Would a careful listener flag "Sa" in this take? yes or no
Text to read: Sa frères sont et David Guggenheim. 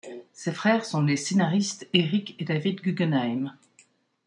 yes